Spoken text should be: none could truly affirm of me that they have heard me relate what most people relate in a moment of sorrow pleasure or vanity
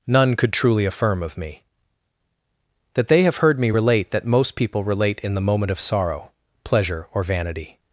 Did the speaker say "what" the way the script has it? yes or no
no